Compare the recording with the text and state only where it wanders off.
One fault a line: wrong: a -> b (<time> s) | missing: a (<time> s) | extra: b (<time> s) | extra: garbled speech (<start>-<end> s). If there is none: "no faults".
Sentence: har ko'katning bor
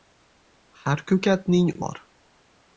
no faults